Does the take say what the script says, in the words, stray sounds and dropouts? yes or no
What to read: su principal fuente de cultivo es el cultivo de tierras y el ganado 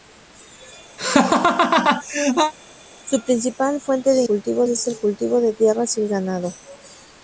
no